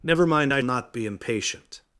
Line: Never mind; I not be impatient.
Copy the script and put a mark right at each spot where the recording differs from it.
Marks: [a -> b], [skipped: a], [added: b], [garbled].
Never mind; I not be impatient.